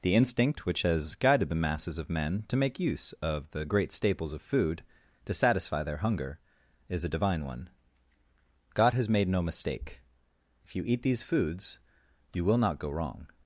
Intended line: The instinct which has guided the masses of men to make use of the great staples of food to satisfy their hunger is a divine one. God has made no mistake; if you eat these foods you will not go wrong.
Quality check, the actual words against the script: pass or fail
pass